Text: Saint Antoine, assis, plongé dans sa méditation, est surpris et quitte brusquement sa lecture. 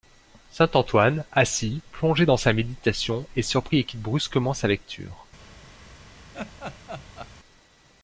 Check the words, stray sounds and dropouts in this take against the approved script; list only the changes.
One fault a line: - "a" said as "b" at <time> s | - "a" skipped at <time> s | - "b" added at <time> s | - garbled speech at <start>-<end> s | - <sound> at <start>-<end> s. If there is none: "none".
- laugh at 6.3-7.3 s